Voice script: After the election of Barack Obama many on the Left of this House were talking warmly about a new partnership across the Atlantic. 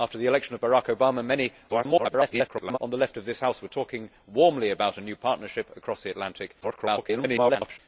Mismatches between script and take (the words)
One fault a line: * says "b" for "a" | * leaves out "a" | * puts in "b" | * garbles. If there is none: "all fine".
* garbles
* garbles